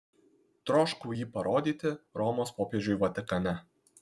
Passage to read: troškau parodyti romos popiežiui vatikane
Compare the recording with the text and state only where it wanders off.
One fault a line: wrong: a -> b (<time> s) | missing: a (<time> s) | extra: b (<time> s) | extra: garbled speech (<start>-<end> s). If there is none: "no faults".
extra: jį (1.2 s)